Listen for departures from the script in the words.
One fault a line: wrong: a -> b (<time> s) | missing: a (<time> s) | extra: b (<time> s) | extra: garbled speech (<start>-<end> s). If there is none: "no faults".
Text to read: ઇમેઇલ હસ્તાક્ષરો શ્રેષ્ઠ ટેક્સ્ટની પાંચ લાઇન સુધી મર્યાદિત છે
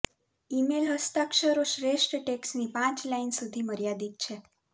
no faults